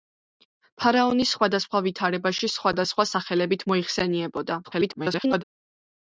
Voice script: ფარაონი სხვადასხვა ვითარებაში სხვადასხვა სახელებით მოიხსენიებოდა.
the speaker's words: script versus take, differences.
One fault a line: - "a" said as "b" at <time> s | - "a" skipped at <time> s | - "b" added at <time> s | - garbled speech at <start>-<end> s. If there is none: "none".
- garbled speech at 4.6-5.4 s